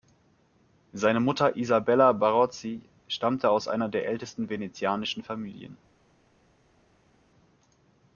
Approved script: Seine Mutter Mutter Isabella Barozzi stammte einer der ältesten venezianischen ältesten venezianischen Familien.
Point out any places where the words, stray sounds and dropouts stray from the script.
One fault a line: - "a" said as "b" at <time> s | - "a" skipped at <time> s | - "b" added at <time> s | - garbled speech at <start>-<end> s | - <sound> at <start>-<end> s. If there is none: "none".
- "Mutter" skipped at 1.6 s
- "aus" added at 3.5 s
- "ältesten venezianischen" skipped at 5.2 s